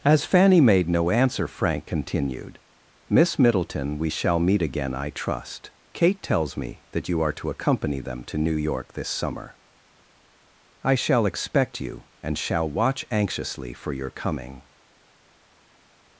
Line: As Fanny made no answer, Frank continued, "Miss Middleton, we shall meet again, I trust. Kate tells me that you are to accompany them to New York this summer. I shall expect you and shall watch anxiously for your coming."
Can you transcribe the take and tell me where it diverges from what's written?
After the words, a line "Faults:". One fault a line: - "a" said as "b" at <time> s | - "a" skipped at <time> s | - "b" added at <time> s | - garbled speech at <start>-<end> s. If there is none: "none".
As Fanny made no answer, Frank continued, "Miss Middleton, we shall meet again, I trust. Kate tells me that you are to accompany them to New York this summer. I shall expect you and shall watch anxiously for your coming."
Faults:
none